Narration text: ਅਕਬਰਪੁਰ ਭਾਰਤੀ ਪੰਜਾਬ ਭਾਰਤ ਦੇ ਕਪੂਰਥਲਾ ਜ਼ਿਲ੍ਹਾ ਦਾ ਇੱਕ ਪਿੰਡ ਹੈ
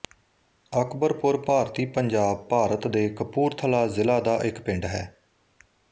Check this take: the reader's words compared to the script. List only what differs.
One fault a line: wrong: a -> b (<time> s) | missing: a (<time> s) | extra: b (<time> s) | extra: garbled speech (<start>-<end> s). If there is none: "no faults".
no faults